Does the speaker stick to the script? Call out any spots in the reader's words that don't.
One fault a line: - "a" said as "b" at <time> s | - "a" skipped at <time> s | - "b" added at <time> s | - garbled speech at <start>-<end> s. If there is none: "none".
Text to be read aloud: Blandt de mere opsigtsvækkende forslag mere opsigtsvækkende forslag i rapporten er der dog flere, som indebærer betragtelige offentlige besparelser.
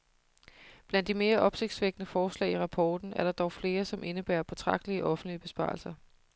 - "mere opsigtsvækkende forslag" skipped at 2.5 s